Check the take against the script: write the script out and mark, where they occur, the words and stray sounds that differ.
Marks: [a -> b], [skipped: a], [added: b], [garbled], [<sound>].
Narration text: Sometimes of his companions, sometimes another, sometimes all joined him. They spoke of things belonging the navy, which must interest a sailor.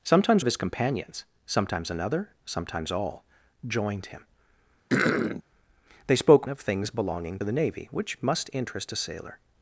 Sometimes of his companions, sometimes another, sometimes all joined him. [throat clearing] They spoke of things belonging the navy, which must interest a sailor.